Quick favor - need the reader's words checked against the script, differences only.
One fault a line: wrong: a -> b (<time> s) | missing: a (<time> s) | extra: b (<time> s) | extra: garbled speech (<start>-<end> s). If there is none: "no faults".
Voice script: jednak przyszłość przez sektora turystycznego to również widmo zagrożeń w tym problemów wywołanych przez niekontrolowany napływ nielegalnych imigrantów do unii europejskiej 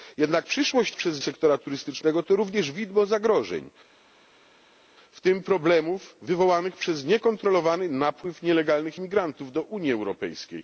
no faults